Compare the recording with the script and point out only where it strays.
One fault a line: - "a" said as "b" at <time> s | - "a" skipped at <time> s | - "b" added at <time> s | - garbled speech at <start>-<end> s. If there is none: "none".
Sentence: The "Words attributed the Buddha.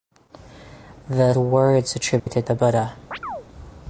none